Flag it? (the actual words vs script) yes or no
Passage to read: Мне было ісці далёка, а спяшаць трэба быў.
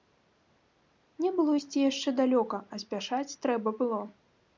yes